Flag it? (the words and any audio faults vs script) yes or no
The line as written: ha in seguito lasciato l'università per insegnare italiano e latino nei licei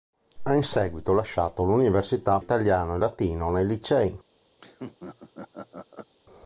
yes